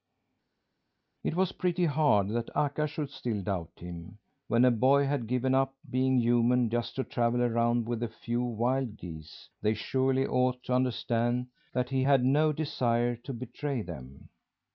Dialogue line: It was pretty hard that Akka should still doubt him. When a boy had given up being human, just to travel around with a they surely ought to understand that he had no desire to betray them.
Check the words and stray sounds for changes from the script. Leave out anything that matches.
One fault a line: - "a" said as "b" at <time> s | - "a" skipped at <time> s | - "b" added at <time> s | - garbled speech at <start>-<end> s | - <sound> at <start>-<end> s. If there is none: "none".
- "few wild geese" added at 8.1 s